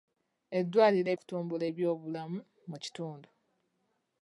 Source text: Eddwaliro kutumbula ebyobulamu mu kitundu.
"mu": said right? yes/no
yes